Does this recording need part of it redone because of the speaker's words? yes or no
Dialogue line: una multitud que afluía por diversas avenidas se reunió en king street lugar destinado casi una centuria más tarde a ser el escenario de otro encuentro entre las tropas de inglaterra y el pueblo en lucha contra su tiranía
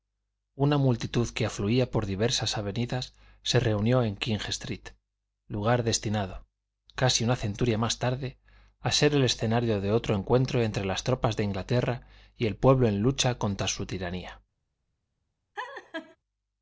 no